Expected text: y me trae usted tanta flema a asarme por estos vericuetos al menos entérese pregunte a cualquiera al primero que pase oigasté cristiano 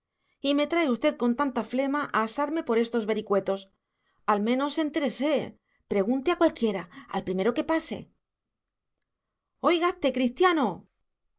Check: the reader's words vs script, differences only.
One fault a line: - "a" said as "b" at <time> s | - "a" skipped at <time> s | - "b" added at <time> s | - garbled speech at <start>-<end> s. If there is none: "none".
- "con" added at 1.2 s